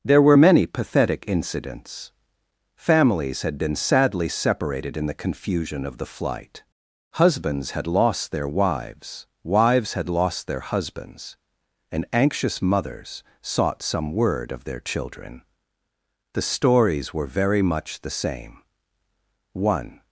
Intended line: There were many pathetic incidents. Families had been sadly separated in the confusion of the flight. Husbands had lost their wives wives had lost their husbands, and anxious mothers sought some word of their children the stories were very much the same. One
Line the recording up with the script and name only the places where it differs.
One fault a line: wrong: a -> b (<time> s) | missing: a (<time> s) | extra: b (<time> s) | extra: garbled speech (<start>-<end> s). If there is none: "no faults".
no faults